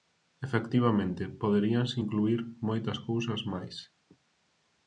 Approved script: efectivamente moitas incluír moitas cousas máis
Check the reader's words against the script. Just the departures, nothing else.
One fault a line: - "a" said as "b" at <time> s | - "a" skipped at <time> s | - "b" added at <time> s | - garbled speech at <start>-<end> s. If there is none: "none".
- "moitas" said as "poderíanse" at 1.4 s